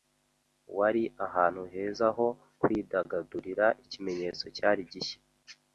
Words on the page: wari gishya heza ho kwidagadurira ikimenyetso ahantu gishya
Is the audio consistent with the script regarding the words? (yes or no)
no